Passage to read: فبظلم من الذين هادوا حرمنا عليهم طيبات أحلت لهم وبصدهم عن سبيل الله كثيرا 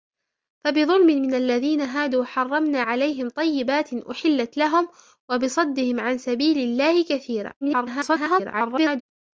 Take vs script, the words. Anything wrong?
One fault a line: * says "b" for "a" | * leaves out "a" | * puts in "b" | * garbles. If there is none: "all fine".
* garbles